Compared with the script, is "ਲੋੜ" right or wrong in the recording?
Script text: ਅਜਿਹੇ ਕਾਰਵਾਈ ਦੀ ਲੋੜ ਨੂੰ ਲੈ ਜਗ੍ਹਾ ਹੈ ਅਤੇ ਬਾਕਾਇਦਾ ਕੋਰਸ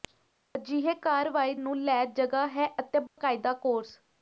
wrong